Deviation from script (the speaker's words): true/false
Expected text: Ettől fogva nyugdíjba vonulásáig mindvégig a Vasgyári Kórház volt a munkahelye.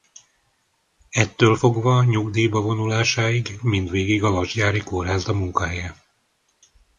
true